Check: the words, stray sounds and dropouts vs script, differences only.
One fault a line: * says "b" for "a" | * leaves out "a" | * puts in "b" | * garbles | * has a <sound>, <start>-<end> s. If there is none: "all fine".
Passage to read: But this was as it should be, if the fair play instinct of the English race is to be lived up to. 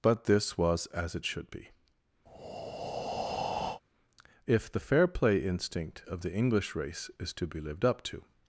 * has a breath, 2.3-3.8 s